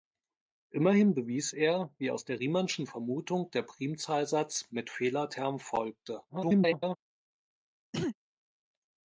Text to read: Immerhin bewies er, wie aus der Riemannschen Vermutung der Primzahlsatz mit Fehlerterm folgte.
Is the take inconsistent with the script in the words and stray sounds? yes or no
yes